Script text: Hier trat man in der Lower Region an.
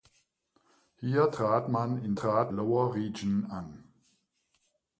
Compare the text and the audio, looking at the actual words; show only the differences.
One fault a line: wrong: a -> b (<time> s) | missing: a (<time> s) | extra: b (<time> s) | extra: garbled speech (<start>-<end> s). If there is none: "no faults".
wrong: der -> trat (2.1 s)